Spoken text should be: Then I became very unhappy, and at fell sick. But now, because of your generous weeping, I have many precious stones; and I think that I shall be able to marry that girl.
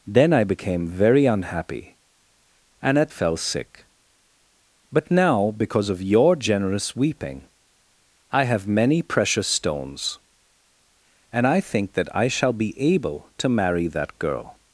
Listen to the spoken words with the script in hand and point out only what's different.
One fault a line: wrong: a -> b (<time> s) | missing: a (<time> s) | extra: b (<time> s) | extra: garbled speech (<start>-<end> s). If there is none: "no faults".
no faults